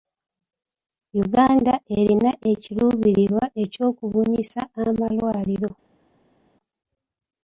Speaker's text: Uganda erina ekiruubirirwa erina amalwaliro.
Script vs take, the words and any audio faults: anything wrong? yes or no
yes